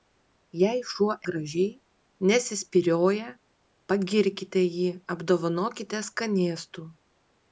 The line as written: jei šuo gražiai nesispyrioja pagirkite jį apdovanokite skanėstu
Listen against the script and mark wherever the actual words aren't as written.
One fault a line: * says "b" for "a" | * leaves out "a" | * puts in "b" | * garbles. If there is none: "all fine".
all fine